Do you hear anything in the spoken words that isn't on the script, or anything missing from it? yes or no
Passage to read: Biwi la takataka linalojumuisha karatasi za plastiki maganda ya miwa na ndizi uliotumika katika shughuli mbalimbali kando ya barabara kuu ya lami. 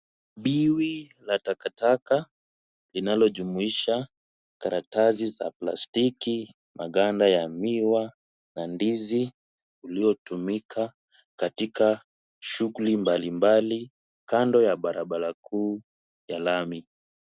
no